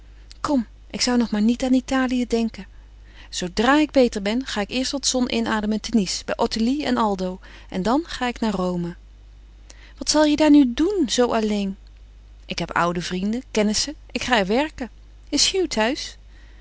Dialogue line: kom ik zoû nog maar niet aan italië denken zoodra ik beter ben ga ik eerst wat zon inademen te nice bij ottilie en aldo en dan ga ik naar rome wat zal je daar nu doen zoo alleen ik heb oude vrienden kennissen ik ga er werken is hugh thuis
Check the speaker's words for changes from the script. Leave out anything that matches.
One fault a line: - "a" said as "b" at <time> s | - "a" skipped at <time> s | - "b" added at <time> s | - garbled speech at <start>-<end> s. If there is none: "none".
none